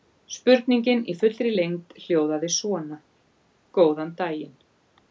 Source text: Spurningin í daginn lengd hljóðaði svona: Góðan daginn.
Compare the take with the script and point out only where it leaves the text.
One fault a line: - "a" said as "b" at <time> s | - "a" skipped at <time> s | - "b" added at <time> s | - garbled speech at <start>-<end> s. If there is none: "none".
- "daginn" said as "fullri" at 1.2 s